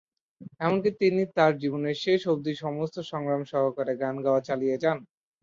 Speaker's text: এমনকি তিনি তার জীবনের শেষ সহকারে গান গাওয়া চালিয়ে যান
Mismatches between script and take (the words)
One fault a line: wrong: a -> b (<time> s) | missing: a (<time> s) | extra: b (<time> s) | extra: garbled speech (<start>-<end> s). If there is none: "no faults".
extra: অবধি সমস্ত সংগ্রাম (2.3 s)